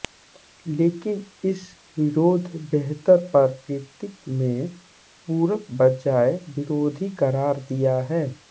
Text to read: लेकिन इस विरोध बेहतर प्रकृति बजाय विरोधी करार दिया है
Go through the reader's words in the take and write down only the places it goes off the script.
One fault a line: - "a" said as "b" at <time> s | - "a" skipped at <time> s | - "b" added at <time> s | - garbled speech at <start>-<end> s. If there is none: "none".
- "में पूरक" added at 4.3 s